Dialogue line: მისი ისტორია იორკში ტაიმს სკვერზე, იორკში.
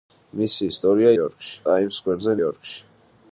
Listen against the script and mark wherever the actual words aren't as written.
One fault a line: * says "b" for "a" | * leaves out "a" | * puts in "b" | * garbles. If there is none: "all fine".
all fine